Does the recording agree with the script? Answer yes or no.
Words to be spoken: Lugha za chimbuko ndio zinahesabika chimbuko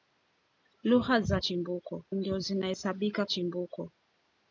yes